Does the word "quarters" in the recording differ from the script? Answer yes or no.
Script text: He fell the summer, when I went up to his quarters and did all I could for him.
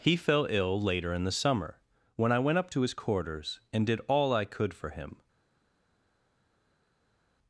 no